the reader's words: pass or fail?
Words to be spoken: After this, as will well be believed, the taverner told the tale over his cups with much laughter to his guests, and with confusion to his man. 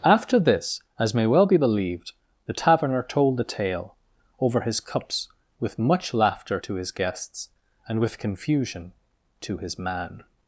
fail